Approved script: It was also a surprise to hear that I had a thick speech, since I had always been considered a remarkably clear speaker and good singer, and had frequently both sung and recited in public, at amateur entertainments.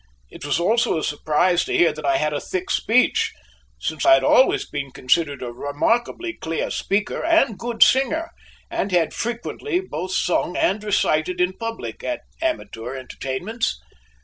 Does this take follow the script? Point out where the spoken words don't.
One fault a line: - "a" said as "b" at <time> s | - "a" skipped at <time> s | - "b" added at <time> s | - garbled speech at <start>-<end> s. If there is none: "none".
none